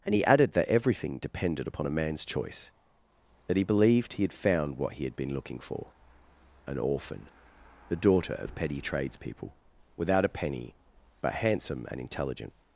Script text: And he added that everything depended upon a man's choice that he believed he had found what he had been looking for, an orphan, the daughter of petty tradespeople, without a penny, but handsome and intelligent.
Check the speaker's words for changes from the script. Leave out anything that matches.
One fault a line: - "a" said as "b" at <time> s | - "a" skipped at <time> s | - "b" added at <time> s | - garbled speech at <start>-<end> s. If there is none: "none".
none